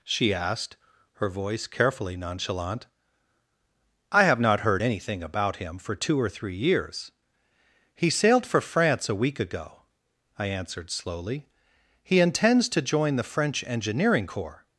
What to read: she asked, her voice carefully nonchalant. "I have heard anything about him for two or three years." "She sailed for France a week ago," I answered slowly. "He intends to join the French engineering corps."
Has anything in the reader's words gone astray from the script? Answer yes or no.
yes